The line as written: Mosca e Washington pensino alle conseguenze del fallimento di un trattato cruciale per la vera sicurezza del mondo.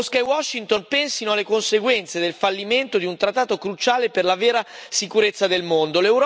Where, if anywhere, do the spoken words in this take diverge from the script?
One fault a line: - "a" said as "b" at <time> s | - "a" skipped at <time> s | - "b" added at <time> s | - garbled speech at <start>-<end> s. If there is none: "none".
none